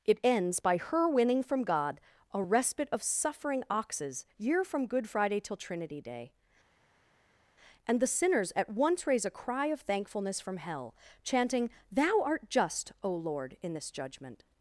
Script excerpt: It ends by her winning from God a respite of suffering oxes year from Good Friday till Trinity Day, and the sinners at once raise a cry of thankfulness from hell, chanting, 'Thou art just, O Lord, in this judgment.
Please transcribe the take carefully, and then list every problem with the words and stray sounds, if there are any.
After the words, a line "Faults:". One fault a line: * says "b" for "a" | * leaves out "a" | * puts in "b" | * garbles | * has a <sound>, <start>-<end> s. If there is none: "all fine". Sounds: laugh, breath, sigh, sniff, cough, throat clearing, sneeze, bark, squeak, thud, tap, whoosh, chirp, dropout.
It ends by her winning from God a respite of suffering oxes year from Good Friday till Trinity Day, and the sinners at once raise a cry of thankfulness from hell, chanting, 'Thou art just, O Lord, in this judgment.
Faults:
all fine